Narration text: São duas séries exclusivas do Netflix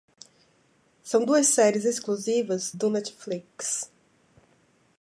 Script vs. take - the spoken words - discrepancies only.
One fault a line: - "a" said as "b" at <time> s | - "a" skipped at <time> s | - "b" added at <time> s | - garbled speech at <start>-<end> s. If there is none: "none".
none